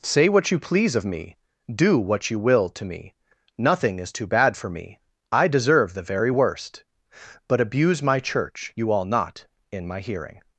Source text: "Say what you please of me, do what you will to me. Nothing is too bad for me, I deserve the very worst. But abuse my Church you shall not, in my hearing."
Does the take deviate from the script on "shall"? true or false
true